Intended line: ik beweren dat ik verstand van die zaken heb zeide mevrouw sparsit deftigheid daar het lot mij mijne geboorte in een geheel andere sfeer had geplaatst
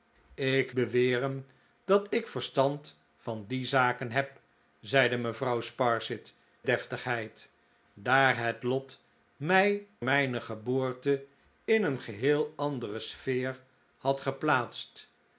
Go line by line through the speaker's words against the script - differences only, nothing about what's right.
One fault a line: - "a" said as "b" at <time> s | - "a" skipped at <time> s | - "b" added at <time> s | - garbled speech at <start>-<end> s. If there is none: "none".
none